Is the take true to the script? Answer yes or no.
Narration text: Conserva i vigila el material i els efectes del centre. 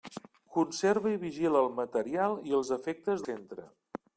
no